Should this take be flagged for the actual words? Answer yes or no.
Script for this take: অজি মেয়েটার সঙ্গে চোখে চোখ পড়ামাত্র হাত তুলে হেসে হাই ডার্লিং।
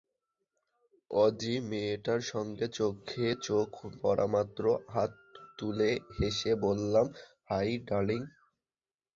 yes